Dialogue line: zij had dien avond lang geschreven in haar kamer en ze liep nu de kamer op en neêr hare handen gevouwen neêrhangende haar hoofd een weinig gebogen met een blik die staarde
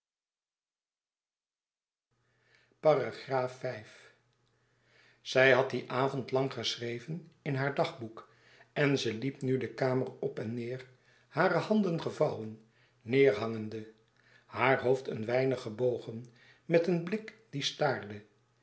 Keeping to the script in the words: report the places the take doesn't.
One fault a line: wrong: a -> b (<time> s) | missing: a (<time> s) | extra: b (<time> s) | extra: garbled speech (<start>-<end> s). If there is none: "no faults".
wrong: kamer -> dagboek (7.8 s)